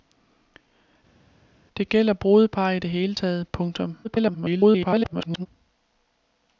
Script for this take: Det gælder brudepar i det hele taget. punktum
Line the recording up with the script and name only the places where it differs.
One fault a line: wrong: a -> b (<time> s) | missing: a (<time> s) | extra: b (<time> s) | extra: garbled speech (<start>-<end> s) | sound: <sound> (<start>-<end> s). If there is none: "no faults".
extra: garbled speech (4.0-5.5 s)